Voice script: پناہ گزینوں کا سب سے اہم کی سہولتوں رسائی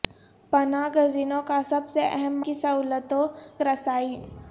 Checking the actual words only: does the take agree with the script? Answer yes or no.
yes